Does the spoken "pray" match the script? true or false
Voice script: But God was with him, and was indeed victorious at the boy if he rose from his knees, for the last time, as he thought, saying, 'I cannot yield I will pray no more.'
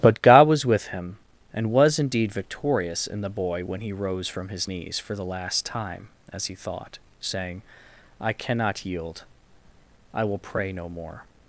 true